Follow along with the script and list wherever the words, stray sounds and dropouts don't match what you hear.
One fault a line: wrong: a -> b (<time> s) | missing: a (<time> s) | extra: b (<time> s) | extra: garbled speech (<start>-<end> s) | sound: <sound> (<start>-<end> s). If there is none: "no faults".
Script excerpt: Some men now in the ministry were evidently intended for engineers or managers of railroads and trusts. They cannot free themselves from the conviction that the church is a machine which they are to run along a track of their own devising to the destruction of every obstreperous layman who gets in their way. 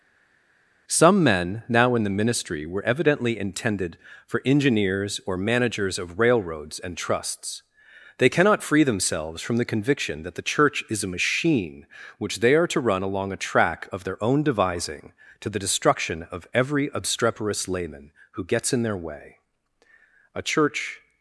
extra: A church (20.3 s)